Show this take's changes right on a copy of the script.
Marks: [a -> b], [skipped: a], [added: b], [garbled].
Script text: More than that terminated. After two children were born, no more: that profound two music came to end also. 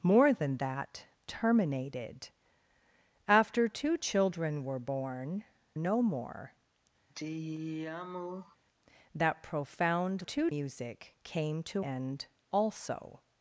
More than that terminated. After two children were born, no more: that profound two music came to end also.